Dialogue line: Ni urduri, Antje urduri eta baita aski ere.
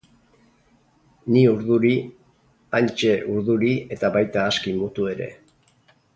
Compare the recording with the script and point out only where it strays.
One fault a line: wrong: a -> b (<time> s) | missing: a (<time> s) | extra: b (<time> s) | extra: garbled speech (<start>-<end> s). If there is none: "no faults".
extra: mutu (4.8 s)